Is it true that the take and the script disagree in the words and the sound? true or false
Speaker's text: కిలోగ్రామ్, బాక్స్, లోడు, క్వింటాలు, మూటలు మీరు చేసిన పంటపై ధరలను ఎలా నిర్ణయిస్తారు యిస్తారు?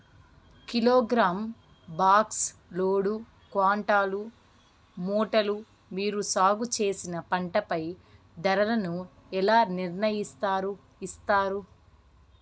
true